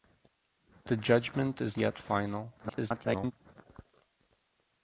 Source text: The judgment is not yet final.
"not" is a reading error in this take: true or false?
true